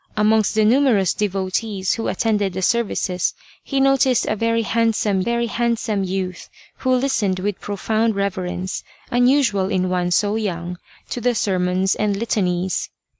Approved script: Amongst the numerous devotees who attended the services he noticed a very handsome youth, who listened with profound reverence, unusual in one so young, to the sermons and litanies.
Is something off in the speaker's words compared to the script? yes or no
yes